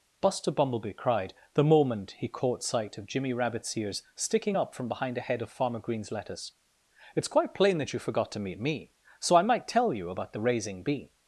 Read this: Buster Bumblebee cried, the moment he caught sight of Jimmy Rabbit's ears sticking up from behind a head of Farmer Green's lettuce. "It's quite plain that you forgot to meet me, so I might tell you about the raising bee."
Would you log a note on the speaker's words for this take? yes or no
no